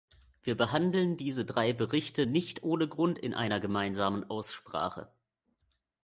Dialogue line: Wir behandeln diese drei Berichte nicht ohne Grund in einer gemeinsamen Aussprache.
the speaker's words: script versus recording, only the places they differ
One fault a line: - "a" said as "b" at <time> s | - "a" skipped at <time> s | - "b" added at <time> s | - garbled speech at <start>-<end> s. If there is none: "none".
none